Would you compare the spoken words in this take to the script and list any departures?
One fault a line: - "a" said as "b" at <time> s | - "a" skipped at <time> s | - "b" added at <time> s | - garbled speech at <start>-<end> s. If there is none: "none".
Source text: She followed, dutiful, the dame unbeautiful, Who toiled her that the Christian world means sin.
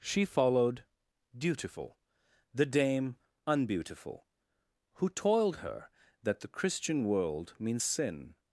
none